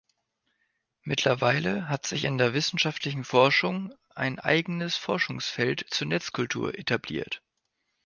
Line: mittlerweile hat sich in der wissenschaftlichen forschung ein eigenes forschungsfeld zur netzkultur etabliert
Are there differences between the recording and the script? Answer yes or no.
no